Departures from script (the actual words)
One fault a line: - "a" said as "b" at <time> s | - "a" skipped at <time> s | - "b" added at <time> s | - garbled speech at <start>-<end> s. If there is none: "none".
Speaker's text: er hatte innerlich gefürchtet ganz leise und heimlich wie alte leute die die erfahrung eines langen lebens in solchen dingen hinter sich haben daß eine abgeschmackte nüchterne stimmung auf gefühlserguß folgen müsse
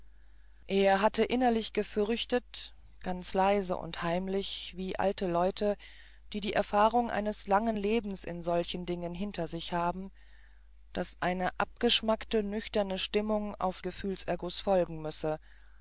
none